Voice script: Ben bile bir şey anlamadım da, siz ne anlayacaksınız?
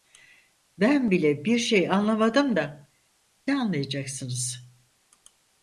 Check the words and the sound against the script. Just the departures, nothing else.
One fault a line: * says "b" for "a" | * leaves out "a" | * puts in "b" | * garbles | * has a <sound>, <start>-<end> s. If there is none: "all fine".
* leaves out "siz"